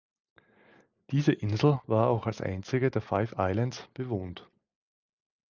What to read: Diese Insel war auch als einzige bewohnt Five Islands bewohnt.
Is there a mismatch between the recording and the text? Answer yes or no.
yes